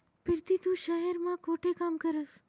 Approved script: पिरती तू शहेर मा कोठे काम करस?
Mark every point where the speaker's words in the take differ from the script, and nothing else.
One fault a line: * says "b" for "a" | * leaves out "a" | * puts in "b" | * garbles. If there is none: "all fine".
all fine